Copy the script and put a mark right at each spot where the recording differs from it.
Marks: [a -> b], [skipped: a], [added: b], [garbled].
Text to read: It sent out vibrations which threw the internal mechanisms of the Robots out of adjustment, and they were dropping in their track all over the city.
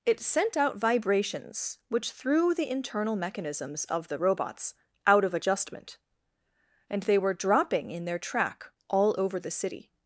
It sent out vibrations which threw the internal mechanisms of the Robots out of adjustment, and they were dropping in their track all over the city.